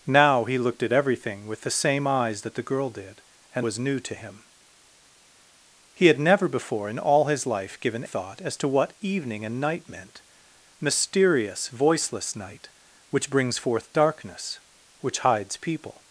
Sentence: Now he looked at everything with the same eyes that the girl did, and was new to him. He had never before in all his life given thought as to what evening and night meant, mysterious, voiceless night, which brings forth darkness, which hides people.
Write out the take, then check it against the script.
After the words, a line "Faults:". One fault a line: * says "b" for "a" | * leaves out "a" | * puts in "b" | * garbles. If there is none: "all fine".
Now he looked at everything with the same eyes that the girl did, and was new to him. He had never before in all his life given thought as to what evening and night meant, mysterious, voiceless night, which brings forth darkness, which hides people.
Faults:
all fine